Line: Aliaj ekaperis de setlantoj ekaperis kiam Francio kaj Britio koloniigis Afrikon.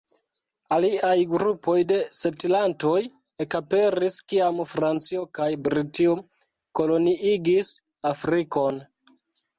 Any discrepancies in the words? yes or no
yes